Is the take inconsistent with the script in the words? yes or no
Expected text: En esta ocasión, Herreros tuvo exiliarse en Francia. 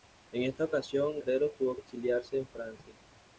no